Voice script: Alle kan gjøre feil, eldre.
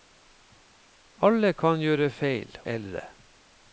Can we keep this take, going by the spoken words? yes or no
yes